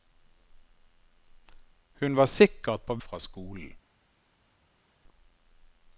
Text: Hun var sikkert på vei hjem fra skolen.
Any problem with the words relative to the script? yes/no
yes